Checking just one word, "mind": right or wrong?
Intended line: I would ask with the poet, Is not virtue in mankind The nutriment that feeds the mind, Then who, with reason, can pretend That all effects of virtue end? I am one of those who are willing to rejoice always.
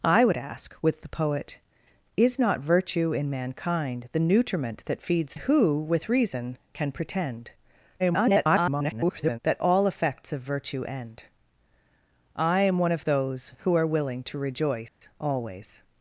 wrong